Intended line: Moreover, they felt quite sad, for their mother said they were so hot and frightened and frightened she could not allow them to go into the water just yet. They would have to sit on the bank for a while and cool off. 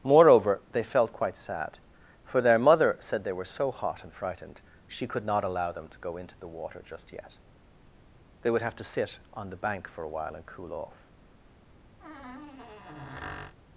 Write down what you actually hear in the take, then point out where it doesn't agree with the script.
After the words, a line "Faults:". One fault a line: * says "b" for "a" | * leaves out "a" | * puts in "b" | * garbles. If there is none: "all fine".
Moreover, they felt quite sad, for their mother said they were so hot and frightened she could not allow them to go into the water just yet. They would have to sit on the bank for a while and cool off.
Faults:
* leaves out "and frightened"